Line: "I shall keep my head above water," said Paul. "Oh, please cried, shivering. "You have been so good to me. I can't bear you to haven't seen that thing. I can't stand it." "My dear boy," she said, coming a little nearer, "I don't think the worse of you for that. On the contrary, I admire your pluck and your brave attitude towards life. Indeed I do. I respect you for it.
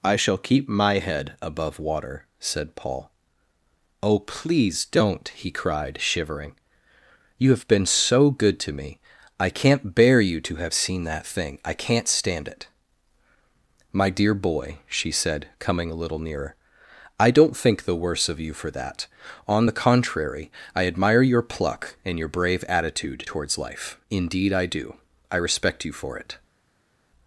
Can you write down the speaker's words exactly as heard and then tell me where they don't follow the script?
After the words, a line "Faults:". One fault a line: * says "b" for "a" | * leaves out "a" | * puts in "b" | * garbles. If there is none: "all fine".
"I shall keep my head above water," said Paul. "Oh, please don't!" he cried, shivering. "You have been so good to me. I can't bear you to have seen that thing. I can't stand it." "My dear boy," she said, coming a little nearer, "I don't think the worse of you for that. On the contrary, I admire your pluck and your brave attitude towards life. Indeed I do. I respect you for it.
Faults:
* puts in "don't he"
* says "have" for "haven't"